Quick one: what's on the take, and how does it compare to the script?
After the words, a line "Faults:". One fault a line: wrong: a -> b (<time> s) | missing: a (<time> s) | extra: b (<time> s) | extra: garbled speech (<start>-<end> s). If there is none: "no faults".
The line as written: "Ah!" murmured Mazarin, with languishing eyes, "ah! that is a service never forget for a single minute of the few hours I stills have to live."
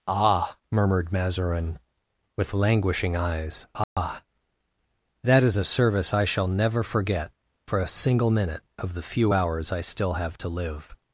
"Ah!" murmured Mazarin, with languishing eyes, "ah! that is a service I shall never forget for a single minute of the few hours I still have to live."
Faults:
extra: I shall (6.1 s)
wrong: stills -> still (9.8 s)